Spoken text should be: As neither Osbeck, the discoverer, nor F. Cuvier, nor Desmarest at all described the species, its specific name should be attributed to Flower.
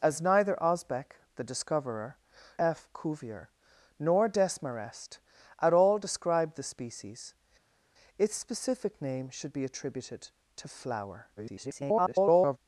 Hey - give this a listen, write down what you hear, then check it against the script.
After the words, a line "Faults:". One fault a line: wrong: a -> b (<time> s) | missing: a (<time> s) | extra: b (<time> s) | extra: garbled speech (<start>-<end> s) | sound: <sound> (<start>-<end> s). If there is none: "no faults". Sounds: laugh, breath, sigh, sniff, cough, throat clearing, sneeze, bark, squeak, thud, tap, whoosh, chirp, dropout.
As neither Osbeck, the discoverer, F. Cuvier, nor Desmarest at all described the species, its specific name should be attributed to Flower. [garbled]
Faults:
missing: nor (2.2 s)
extra: garbled speech (11.4-12.6 s)